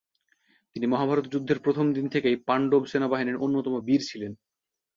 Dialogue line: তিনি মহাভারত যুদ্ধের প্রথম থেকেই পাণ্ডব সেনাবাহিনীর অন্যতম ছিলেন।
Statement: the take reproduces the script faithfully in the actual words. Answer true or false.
false